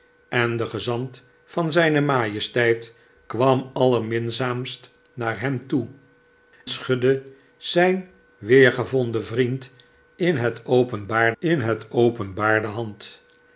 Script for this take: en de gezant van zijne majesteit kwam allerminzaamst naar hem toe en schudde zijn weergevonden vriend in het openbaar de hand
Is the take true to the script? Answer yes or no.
no